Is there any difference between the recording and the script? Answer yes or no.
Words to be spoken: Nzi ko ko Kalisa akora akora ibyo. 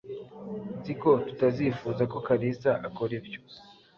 yes